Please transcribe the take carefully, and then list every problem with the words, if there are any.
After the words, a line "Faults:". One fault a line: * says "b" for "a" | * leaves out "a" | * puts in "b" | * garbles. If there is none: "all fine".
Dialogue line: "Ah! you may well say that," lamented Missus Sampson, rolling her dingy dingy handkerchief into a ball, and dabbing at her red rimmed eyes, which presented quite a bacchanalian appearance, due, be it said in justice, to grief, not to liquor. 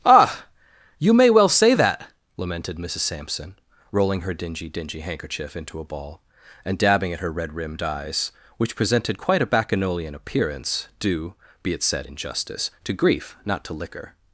"Ah! you may well say that," lamented Missus Sampson, rolling her dingy dingy handkerchief into a ball, and dabbing at her red rimmed eyes, which presented quite a bacchanalian appearance, due, be it said in justice, to grief, not to liquor.
Faults:
all fine